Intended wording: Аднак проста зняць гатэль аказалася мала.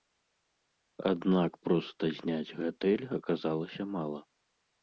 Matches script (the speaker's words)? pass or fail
pass